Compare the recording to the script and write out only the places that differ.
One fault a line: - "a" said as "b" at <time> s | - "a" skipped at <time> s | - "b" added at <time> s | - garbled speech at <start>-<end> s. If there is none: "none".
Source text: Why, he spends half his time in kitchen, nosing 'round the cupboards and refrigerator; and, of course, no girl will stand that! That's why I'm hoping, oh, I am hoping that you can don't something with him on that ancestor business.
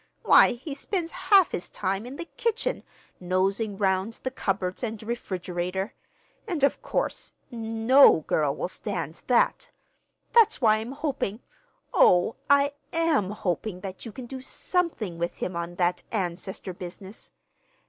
- "the" added at 2.1 s
- "don't" said as "do" at 14.3 s